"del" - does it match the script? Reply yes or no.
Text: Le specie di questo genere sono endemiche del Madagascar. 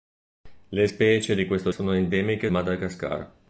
no